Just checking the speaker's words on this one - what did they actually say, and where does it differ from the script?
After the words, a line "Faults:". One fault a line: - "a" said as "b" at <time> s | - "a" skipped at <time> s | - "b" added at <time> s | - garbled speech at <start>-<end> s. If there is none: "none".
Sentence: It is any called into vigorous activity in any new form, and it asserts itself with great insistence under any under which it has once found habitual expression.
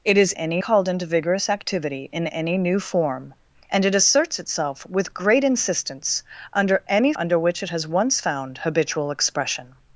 It is any called into vigorous activity in any new form, and it asserts itself with great insistence under any under which it has once found habitual expression.
Faults:
none